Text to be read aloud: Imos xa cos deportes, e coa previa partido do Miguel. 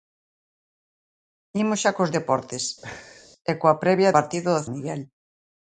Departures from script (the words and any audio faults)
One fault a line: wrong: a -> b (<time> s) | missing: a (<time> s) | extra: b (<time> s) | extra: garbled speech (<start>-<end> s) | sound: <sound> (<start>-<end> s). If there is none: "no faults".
sound: laugh (2.8-3.3 s)